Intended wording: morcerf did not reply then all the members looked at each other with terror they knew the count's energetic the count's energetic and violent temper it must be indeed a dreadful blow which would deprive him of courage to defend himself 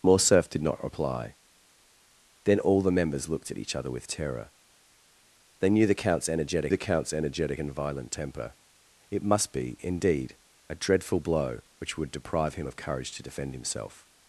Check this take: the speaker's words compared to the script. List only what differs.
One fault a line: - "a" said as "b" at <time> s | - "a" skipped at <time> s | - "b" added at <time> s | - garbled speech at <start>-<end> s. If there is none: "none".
none